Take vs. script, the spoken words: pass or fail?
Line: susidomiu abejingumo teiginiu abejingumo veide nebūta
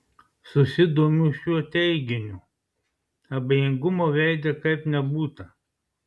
fail